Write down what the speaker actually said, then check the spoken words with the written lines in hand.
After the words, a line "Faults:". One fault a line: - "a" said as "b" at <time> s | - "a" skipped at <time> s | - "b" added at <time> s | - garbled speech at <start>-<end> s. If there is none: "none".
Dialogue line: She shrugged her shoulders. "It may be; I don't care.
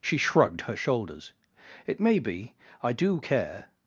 She shrugged her shoulders. "It may be; I do care.
Faults:
- "don't" said as "do" at 2.9 s